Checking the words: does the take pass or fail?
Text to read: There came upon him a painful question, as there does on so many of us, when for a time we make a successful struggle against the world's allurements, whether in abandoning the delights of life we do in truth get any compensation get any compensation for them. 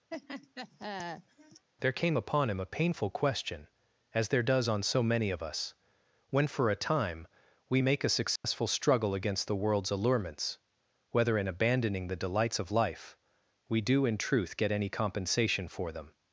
fail